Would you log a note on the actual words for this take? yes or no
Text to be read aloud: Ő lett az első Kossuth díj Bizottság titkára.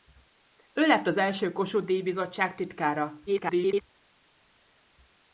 yes